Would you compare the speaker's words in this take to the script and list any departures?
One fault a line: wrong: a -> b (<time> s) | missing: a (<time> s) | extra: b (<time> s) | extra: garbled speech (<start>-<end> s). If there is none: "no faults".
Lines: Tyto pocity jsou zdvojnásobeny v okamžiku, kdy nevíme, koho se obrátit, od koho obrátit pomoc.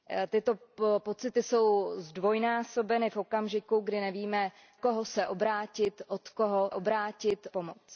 no faults